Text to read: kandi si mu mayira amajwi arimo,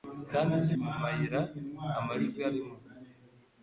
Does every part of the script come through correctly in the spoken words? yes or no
yes